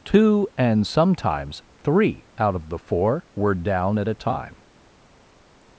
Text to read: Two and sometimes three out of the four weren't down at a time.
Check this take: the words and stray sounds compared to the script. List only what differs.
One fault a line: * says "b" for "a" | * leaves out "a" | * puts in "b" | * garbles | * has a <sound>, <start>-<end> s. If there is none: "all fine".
* says "were" for "weren't"